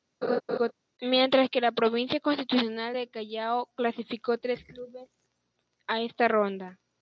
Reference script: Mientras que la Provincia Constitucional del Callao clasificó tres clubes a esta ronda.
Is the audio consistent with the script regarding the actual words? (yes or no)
yes